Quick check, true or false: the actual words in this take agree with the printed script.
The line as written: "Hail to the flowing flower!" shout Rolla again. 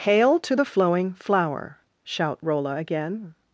true